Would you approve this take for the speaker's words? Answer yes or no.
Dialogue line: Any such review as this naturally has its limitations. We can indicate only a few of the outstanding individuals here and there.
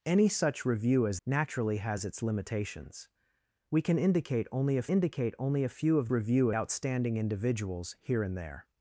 no